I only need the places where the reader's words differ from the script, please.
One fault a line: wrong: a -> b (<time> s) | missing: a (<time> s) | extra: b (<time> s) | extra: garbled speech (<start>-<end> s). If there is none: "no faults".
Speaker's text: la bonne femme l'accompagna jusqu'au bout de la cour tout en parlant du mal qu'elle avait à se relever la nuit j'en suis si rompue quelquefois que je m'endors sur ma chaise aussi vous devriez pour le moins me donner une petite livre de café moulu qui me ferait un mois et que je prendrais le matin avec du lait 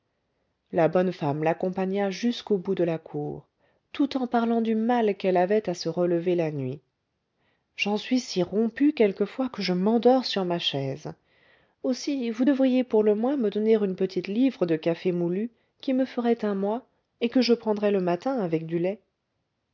no faults